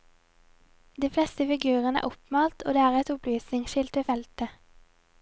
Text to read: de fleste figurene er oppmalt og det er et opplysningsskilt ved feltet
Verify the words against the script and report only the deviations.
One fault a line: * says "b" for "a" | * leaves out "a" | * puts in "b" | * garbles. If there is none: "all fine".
all fine